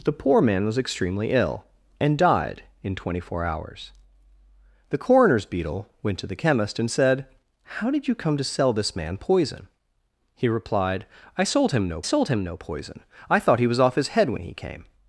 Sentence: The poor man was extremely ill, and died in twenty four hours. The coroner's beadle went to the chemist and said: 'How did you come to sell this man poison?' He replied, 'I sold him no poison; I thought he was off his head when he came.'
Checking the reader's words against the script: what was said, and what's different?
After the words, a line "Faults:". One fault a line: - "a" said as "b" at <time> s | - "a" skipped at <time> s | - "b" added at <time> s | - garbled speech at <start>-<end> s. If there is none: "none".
The poor man was extremely ill, and died in twenty four hours. The coroner's beadle went to the chemist and said: 'How did you come to sell this man poison?' He replied, 'I sold him no sold him no poison; I thought he was off his head when he came.'
Faults:
- "sold him no" added at 12.0 s